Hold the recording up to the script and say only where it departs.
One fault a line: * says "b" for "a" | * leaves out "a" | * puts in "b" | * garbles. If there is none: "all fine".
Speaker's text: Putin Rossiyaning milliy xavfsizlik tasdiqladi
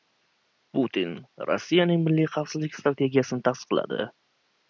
* puts in "strategiyasini"